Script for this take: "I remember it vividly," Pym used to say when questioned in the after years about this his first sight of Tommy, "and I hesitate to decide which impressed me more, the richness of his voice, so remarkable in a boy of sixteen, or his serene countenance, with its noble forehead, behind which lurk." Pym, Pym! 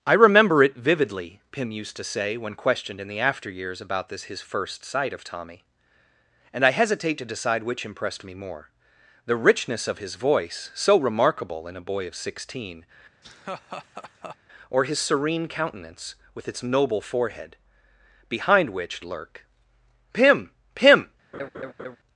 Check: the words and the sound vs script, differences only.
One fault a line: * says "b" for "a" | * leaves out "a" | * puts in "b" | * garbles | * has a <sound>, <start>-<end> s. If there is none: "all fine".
* has a laugh, 13.2-14.4 s
* has a laugh, 21.3-22.0 s